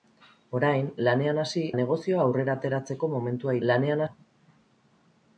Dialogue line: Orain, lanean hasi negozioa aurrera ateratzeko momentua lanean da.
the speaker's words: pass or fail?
pass